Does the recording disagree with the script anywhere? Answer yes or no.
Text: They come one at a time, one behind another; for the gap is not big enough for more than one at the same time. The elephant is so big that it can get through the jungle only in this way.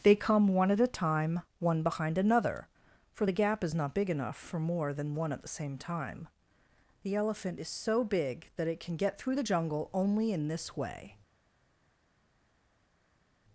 no